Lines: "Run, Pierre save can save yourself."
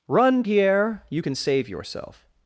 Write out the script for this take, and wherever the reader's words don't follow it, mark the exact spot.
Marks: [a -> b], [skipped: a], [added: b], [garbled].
"Run, Pierre [save -> you] can save yourself."